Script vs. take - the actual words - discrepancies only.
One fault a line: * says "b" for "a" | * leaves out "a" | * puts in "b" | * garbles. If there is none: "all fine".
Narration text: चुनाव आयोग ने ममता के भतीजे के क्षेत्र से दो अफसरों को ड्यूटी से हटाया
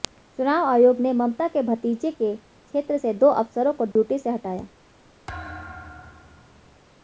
all fine